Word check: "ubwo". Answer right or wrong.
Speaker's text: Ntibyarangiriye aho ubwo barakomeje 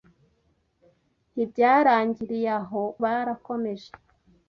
wrong